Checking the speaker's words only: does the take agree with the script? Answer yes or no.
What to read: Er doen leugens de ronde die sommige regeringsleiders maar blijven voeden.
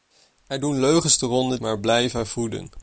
no